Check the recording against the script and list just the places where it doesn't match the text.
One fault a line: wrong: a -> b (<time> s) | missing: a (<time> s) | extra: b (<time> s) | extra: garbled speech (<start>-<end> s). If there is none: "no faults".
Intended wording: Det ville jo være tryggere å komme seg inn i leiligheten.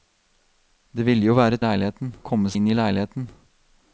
wrong: tryggere -> leiligheten (1.6 s)
missing: seg (2.5 s)